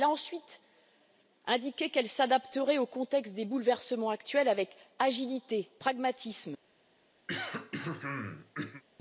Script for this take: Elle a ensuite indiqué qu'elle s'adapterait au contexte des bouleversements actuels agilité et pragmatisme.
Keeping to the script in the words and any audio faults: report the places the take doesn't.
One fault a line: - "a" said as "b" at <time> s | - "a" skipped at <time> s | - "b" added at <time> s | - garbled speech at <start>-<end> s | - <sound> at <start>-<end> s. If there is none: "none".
- "avec" added at 4.5 s
- throat clearing at 7.3-8.8 s